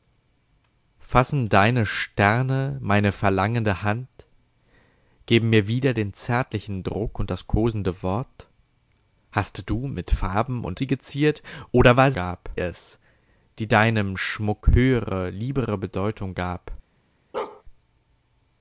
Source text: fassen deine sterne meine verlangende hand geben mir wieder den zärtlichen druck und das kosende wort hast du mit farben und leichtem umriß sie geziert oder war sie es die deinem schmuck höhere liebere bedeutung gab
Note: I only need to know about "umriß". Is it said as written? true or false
false